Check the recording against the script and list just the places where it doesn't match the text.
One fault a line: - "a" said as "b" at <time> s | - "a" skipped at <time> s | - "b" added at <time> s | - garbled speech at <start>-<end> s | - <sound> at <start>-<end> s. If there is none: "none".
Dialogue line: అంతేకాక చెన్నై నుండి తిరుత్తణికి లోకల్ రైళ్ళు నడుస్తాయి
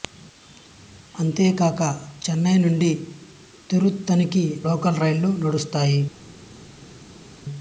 none